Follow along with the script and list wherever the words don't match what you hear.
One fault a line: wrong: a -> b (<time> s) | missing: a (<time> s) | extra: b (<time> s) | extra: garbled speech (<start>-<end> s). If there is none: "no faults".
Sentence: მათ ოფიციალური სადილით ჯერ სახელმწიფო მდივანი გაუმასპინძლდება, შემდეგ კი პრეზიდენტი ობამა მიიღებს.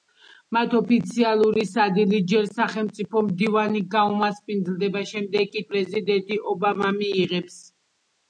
no faults